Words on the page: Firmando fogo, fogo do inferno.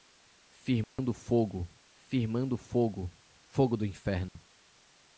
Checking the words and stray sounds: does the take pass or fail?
fail